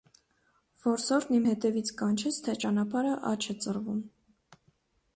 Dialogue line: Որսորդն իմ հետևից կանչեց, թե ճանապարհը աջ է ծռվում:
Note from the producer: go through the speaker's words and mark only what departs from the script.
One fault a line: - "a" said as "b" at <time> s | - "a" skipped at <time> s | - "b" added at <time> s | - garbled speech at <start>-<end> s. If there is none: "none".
none